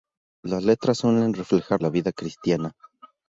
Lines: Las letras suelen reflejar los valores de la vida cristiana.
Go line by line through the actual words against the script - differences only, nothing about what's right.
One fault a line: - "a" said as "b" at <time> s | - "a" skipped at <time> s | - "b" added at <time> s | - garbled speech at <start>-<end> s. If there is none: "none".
- "los valores de" skipped at 1.8 s